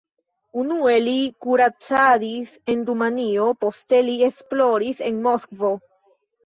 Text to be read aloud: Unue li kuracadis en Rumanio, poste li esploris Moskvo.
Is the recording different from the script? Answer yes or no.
yes